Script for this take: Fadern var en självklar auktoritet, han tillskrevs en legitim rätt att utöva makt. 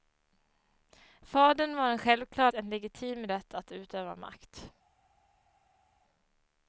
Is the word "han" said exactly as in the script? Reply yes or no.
no